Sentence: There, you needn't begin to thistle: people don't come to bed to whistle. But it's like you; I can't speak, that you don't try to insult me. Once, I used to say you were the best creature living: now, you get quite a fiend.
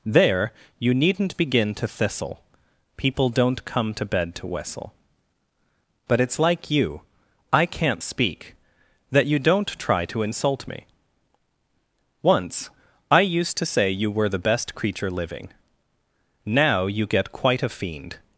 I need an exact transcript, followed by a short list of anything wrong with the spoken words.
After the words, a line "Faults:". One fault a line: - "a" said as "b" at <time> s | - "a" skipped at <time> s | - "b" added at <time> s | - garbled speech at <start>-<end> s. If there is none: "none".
There, you needn't begin to thistle: people don't come to bed to whistle. But it's like you; I can't speak, that you don't try to insult me. Once, I used to say you were the best creature living: now, you get quite a fiend.
Faults:
none